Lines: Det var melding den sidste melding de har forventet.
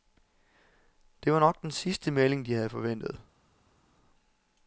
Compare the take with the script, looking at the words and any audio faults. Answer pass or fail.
fail